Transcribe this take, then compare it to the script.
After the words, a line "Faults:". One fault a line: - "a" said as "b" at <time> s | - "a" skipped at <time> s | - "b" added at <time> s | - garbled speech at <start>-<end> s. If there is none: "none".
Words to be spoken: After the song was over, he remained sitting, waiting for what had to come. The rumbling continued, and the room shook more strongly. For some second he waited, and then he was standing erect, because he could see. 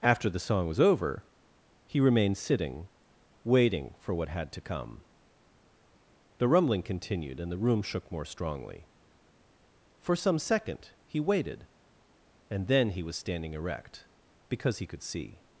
After the song was over, he remained sitting, waiting for what had to come. The rumbling continued, and the room shook more strongly. For some second he waited, and then he was standing erect, because he could see.
Faults:
none